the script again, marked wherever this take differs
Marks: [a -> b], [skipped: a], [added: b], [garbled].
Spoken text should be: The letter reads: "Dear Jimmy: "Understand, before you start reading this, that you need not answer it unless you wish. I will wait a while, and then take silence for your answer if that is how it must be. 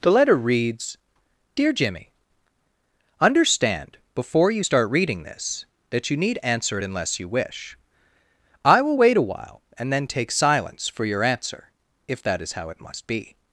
The letter reads: "Dear Jimmy: "Understand, before you start reading this, that you need [skipped: not] answer it unless you wish. I will wait a while, and then take silence for your answer if that is how it must be.